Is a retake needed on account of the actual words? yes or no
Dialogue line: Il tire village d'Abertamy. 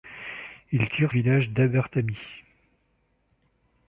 no